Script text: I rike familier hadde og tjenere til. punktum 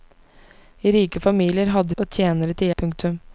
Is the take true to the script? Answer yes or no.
yes